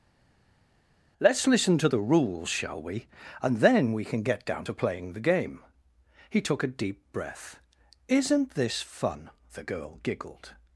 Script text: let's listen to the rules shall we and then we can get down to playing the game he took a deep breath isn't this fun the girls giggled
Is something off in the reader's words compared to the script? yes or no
yes